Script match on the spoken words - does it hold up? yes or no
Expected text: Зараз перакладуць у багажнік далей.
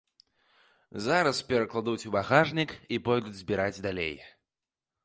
no